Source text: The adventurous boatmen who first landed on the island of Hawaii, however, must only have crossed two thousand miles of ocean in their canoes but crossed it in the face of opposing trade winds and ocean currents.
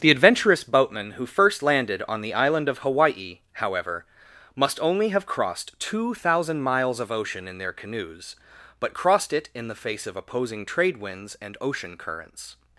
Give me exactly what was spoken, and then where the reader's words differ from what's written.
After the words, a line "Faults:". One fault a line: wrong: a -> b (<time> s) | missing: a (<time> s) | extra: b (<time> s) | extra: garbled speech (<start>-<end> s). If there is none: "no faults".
The adventurous boatmen who first landed on the island of Hawaii, however, must only have crossed two thousand miles of ocean in their canoes but crossed it in the face of opposing trade winds and ocean currents.
Faults:
no faults